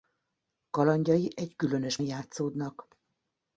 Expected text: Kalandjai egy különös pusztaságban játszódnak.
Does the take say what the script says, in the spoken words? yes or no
no